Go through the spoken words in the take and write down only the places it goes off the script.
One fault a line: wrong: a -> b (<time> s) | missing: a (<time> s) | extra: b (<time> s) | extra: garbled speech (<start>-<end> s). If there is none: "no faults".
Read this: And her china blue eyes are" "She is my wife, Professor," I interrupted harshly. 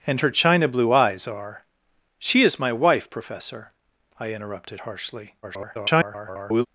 extra: garbled speech (5.4-6.7 s)